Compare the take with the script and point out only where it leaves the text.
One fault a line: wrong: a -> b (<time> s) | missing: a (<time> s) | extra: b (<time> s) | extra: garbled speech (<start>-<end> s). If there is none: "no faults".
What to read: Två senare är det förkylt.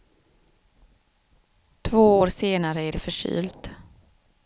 extra: år (2.2 s)